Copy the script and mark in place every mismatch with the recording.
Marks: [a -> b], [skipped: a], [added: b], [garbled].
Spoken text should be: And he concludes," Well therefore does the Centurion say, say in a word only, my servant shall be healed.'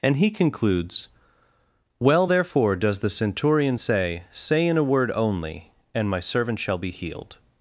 And he concludes," Well therefore does the Centurion say, say in a word only, [added: and] my servant shall be healed.'